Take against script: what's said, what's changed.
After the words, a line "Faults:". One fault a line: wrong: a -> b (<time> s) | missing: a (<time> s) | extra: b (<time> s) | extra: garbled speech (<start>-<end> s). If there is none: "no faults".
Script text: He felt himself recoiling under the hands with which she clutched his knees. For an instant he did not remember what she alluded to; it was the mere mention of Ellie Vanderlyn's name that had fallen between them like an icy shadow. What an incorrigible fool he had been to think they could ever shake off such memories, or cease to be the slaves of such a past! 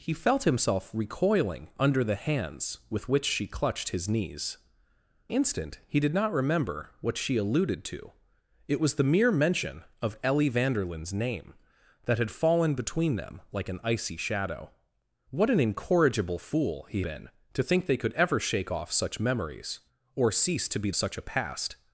He felt himself recoiling under the hands with which she clutched his knees. Instant he did not remember what she alluded to; it was the mere mention of Ellie Vanderlyn's name that had fallen between them like an icy shadow. What an incorrigible fool he been to think they could ever shake off such memories, or cease to be such a past!
Faults:
missing: For an (4.6 s)
missing: had (17.0 s)
missing: the slaves of (20.9 s)